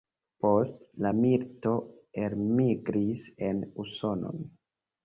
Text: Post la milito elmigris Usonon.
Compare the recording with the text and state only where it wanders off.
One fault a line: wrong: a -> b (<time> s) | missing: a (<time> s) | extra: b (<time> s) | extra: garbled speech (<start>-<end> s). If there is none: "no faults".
extra: en (3.5 s)